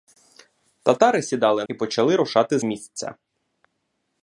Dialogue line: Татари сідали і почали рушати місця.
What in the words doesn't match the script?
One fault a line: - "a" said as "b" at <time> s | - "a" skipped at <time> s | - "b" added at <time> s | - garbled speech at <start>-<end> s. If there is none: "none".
none